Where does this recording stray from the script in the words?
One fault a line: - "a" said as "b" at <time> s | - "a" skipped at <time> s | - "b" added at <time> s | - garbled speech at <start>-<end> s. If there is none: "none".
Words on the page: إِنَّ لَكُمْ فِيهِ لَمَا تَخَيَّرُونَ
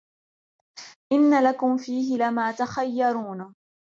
none